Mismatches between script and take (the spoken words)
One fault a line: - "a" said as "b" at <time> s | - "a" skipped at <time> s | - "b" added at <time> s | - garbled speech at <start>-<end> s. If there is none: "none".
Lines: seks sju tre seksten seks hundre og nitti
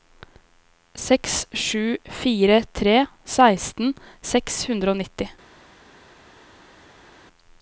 - "fire" added at 2.2 s